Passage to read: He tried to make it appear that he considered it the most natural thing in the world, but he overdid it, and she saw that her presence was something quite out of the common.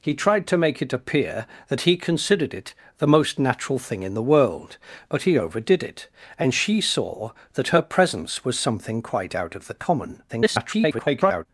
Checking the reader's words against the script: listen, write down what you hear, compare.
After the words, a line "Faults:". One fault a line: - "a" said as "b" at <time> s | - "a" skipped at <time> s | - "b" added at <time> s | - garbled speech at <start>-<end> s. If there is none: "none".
He tried to make it appear that he considered it the most natural thing in the world, but he overdid it, and she saw that her presence was something quite out of the common. [garbled]
Faults:
- garbled speech at 10.3-11.5 s